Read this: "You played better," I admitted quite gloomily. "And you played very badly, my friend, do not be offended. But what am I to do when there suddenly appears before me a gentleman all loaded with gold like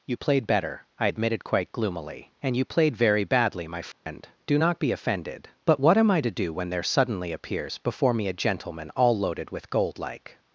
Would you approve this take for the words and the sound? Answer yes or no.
no